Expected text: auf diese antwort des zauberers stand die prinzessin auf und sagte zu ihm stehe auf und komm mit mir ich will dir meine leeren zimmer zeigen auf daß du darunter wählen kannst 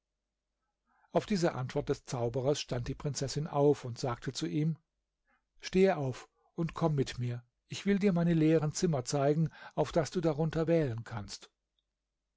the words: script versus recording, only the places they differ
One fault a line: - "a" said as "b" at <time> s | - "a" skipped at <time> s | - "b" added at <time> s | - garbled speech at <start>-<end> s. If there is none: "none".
none